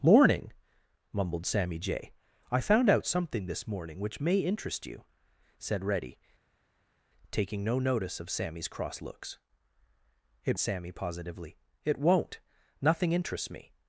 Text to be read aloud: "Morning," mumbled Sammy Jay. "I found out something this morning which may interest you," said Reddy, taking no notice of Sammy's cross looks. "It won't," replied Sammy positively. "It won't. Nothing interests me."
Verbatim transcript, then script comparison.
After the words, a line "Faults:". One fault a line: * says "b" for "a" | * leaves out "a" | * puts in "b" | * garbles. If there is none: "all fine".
"Morning," mumbled Sammy Jay. "I found out something this morning which may interest you," said Reddy, taking no notice of Sammy's cross looks. "It Sammy positively. "It won't. Nothing interests me."
Faults:
* leaves out "won't replied"